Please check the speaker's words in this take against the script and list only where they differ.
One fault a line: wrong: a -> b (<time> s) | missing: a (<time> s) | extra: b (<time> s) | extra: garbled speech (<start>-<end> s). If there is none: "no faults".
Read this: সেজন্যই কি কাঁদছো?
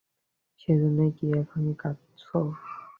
extra: এখন (1.4 s)